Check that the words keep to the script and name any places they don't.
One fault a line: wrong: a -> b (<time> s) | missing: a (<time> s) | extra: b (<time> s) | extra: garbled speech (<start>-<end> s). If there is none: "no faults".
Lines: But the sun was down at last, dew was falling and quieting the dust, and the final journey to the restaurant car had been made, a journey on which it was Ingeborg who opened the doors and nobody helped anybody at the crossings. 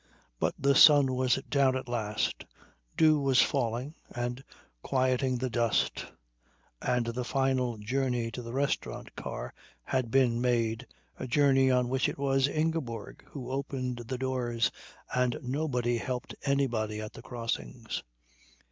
no faults